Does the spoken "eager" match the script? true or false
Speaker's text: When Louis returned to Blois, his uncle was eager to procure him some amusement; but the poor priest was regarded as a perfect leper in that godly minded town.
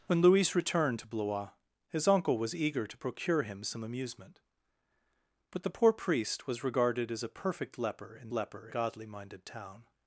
true